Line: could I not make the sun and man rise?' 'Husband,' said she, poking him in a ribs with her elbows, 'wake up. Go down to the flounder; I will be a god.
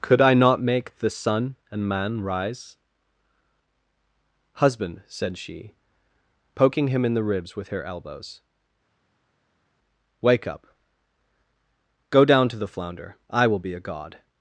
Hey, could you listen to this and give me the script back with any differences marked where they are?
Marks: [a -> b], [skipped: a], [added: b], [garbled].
could I not make the sun and man rise?' 'Husband,' said she, poking him in [a -> the] ribs with her elbows, 'wake up. Go down to the flounder; I will be a god.